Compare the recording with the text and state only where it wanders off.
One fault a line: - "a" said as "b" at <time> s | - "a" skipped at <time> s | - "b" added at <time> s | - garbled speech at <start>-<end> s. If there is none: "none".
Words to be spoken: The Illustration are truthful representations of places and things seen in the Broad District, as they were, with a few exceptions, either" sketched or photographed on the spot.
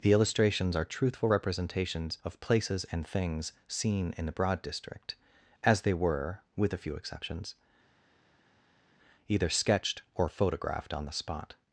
- "Illustration" said as "Illustrations" at 0.1 s